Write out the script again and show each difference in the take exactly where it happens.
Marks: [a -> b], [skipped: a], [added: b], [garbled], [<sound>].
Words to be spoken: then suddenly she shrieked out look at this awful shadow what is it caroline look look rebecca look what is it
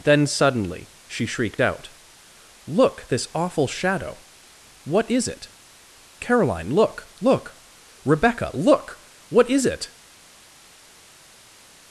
then suddenly she shrieked out look [skipped: at] this awful shadow what is it caroline look look rebecca look what is it